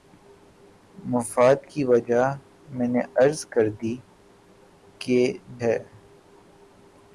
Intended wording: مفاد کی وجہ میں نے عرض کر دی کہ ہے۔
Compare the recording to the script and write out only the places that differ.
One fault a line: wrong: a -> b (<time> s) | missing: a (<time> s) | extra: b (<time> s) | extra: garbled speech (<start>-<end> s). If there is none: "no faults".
no faults